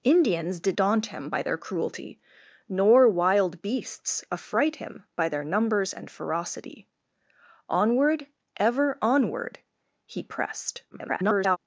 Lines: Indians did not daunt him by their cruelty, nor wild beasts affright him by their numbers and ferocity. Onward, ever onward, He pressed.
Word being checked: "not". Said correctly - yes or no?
no